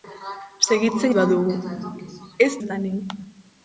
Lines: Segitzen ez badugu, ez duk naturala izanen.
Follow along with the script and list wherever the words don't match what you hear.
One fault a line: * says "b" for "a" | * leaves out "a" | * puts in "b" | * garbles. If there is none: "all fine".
* leaves out "ez"
* leaves out "duk naturala"